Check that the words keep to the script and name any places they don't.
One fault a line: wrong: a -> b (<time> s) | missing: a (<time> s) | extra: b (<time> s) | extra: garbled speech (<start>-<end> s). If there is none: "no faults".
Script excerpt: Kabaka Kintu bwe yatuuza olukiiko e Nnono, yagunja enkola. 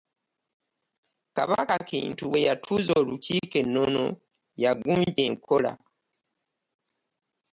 no faults